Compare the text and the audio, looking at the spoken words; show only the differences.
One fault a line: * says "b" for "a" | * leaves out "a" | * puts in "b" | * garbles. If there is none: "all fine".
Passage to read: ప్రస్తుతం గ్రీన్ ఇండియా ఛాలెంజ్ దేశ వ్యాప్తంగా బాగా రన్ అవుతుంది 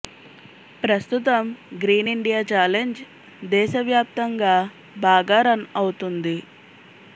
all fine